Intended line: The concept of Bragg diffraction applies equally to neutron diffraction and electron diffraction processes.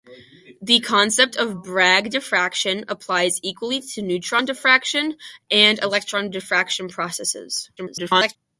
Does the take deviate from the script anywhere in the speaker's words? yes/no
yes